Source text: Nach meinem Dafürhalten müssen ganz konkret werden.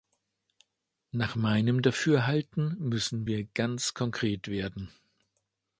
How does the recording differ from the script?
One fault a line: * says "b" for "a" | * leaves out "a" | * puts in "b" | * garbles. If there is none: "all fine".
* puts in "wir"